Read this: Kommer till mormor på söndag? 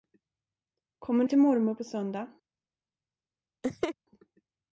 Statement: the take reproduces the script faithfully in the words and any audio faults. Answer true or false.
false